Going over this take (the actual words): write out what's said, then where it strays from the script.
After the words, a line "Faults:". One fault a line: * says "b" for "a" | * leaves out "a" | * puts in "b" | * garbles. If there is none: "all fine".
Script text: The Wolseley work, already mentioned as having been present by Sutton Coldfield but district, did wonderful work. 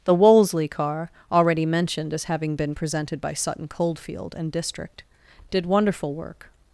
The Wolseley car, already mentioned as having been presented by Sutton Coldfield and district, did wonderful work.
Faults:
* says "car" for "work"
* says "presented" for "present"
* says "and" for "but"